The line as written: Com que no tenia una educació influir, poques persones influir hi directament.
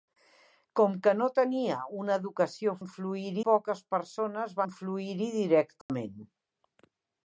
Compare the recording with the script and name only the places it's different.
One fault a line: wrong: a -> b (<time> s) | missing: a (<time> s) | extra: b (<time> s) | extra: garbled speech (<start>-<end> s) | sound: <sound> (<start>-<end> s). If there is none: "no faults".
sound: dropout (5.8-5.9 s)